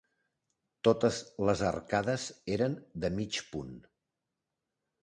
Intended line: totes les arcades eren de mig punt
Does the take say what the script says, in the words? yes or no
yes